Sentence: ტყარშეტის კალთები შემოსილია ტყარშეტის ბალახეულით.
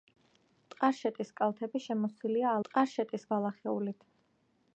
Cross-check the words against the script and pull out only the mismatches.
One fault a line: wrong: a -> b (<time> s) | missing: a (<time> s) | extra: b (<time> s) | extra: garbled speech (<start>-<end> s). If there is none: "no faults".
no faults